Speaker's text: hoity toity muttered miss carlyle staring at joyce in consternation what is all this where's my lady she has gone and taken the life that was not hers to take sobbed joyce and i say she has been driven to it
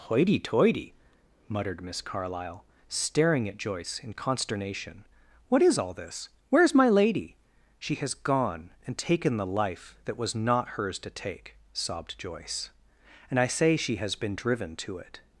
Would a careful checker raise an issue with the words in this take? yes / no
no